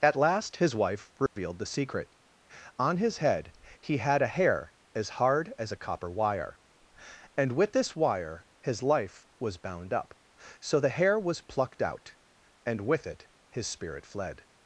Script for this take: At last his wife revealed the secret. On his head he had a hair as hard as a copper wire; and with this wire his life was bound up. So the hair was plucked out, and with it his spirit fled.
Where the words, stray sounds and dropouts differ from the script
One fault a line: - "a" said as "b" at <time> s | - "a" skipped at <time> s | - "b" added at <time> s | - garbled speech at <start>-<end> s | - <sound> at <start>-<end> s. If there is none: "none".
- dropout at 1.3-1.4 s